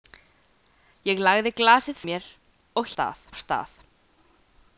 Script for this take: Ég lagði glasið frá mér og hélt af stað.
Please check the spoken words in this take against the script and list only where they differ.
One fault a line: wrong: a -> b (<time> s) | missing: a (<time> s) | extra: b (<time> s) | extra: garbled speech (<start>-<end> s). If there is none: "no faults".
missing: frá (2.0 s)
wrong: hélt -> stað (3.0 s)